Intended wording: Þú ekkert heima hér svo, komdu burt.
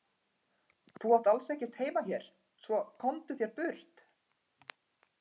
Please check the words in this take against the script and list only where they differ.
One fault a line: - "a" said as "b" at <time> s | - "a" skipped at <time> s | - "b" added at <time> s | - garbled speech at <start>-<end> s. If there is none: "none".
- "átt alls" added at 1.2 s
- "þér" added at 3.4 s